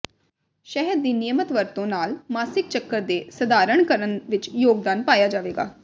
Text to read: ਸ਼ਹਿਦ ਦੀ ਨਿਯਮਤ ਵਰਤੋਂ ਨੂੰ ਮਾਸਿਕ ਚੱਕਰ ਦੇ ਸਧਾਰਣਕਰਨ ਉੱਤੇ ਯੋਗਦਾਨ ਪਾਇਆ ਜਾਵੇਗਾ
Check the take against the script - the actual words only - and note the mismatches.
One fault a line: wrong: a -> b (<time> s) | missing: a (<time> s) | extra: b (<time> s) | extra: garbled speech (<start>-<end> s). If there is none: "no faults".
wrong: ਨੂੰ -> ਨਾਲ (1.9 s)
wrong: ਉੱਤੇ -> ਵਿੱਚ (4.3 s)